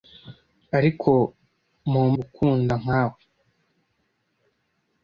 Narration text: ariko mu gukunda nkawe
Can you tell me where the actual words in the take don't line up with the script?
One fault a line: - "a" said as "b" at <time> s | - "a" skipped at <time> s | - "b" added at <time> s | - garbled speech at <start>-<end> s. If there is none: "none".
none